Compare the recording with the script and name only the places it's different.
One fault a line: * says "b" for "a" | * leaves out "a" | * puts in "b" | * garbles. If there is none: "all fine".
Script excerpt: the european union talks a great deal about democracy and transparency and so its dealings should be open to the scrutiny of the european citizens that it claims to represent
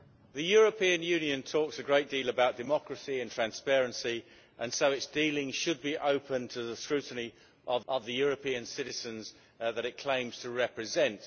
* puts in "of"